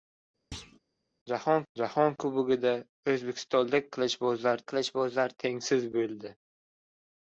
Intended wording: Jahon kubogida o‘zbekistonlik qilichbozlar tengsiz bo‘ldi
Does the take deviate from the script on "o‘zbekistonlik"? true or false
false